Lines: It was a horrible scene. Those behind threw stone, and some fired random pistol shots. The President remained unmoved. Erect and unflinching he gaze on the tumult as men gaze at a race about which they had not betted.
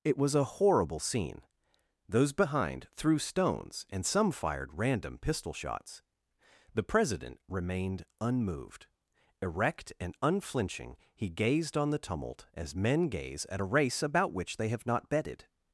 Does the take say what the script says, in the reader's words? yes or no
no